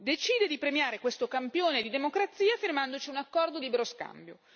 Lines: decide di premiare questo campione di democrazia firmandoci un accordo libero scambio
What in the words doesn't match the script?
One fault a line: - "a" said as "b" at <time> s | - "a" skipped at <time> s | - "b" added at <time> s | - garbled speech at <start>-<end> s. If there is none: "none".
none